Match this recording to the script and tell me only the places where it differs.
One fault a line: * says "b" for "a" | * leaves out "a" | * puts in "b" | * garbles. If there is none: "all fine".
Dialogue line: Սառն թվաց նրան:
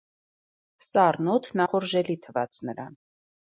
* puts in "օդն ախորժելի"